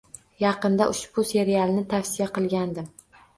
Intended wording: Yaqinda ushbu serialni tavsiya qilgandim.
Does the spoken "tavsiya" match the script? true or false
true